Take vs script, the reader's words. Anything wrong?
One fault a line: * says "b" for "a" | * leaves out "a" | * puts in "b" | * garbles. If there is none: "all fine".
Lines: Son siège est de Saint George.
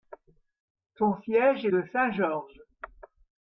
all fine